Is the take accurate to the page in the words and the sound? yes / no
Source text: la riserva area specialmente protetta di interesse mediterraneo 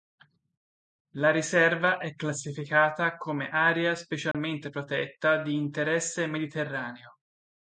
no